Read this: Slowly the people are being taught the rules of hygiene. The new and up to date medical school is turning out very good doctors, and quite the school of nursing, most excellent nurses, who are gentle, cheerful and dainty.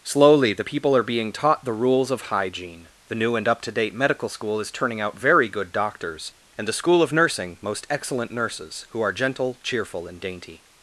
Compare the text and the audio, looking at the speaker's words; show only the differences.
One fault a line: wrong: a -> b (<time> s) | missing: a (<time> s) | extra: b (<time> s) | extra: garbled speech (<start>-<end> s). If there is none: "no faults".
missing: quite (6.7 s)